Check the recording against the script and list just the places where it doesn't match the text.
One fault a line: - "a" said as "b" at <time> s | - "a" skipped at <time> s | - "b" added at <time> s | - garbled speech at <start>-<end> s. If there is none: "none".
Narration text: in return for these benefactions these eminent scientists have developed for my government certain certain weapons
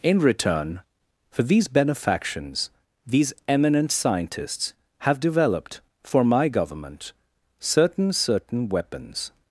none